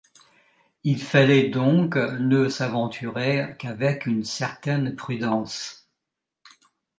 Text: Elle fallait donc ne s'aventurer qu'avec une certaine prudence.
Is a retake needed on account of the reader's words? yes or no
yes